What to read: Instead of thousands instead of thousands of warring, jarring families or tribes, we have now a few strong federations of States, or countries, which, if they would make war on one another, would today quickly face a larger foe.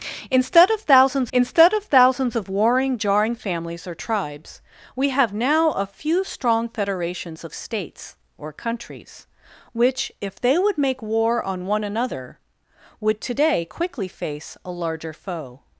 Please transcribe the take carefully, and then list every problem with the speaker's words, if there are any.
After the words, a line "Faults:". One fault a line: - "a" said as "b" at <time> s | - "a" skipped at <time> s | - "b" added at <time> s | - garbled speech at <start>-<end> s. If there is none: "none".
Instead of thousands instead of thousands of warring, jarring families or tribes, we have now a few strong federations of States, or countries, which, if they would make war on one another, would today quickly face a larger foe.
Faults:
none